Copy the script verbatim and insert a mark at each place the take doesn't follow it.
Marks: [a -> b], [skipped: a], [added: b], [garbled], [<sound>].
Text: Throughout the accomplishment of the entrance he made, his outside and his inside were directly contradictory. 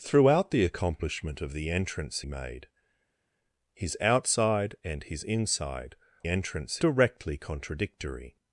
Throughout the accomplishment of the entrance [skipped: he] made, his outside and his inside [were -> entrance] directly contradictory.